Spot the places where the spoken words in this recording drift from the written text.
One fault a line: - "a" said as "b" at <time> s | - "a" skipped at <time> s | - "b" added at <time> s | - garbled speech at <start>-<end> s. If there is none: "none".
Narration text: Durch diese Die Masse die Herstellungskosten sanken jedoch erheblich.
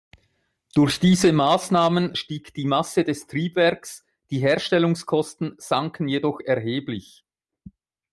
- "Maßnahmen stieg" added at 1.3 s
- "des Triebwerks" added at 3.0 s